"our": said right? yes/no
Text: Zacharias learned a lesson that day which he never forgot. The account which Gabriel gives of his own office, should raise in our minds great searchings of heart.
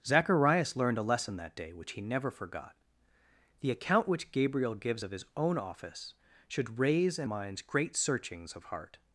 no